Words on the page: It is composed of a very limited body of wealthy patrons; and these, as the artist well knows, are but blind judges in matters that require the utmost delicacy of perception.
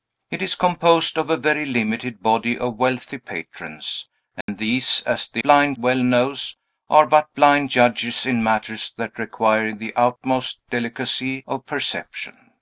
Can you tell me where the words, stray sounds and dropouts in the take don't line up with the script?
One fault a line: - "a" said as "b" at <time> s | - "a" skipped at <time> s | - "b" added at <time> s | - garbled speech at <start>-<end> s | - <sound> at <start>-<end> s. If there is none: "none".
- dropout at 4.4-4.5 s
- "artist" said as "blind" at 5.4 s